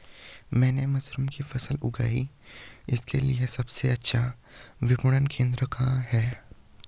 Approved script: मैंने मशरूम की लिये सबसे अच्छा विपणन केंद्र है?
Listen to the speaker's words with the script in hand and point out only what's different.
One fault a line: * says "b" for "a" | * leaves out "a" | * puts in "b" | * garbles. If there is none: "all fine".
* puts in "फसल उगाई इसके"
* puts in "कहाँ"